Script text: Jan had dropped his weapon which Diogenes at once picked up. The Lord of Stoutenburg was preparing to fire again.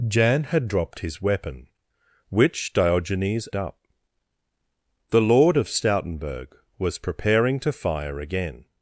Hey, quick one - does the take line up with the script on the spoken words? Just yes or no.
no